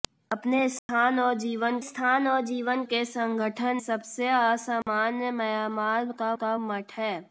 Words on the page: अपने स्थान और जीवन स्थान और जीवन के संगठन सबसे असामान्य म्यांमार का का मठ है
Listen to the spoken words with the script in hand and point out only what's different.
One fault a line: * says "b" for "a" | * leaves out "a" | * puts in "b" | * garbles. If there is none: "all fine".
all fine